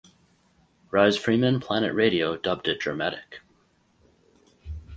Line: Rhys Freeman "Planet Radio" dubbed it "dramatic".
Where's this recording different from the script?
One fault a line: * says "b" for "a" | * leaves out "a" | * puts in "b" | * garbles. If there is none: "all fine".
all fine